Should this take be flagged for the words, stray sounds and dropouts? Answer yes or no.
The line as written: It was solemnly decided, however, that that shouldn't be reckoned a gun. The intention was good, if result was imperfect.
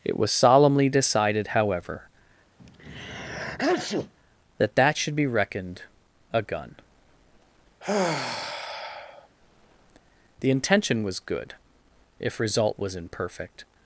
yes